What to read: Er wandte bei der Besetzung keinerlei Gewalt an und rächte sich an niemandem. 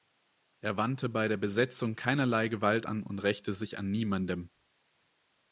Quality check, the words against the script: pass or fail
pass